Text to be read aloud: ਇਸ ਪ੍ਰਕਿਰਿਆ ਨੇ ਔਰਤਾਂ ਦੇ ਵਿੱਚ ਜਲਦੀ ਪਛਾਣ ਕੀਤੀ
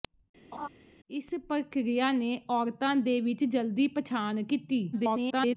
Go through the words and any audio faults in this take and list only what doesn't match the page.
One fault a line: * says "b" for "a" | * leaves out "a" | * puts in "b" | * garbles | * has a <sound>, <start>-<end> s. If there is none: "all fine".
* has a laugh, 0.5-0.7 s
* garbles